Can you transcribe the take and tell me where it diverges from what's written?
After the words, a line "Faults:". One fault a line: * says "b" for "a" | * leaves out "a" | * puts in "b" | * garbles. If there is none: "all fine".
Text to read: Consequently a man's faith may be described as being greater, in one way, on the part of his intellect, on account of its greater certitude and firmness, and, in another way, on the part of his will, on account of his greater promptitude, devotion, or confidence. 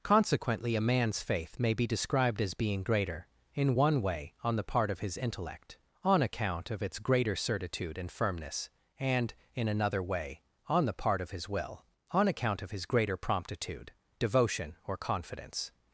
Consequently a man's faith may be described as being greater, in one way, on the part of his intellect, on account of its greater certitude and firmness, and, in another way, on the part of his will, on account of his greater promptitude, devotion, or confidence.
Faults:
all fine